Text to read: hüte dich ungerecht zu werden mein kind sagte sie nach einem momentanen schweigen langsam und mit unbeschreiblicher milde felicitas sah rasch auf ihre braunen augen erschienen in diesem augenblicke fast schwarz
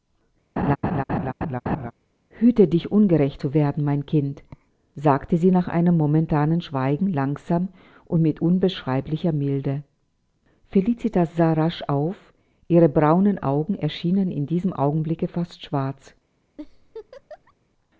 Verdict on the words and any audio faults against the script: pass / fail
fail